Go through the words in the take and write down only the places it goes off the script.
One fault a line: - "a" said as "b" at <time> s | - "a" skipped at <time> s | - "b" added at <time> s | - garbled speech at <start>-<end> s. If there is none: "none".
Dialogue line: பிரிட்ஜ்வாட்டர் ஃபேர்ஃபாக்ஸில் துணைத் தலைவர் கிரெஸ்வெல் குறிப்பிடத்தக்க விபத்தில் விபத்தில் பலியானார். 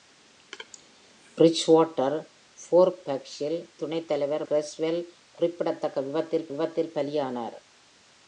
none